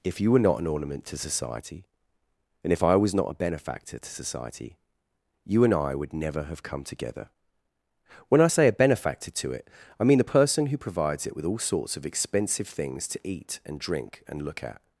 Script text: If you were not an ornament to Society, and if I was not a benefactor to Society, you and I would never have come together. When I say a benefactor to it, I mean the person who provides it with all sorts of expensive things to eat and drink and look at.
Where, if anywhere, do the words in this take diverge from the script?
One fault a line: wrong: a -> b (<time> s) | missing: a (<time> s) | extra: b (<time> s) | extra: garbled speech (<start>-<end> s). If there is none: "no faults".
no faults